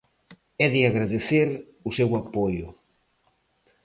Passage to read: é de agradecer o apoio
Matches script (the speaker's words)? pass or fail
fail